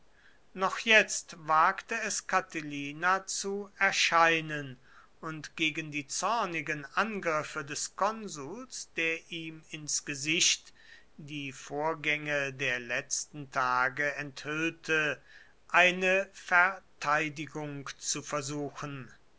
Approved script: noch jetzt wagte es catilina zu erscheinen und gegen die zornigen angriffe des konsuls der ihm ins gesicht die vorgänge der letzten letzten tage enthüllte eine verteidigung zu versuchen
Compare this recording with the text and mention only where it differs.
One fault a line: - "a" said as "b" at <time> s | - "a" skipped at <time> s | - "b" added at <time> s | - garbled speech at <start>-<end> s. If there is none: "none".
- "letzten" skipped at 13.5 s